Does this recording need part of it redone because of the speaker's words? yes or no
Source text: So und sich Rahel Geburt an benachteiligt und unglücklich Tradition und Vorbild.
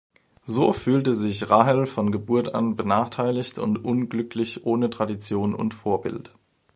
yes